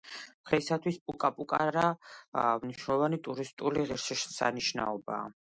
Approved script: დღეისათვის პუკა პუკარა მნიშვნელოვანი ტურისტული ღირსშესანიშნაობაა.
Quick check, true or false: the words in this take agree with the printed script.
true